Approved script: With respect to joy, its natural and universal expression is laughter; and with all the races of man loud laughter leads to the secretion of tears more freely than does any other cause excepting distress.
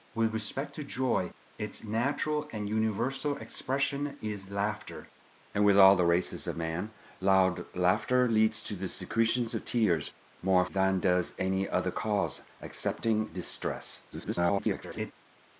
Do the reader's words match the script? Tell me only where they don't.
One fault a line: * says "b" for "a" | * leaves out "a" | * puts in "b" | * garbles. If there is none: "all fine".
* leaves out "freely"
* garbles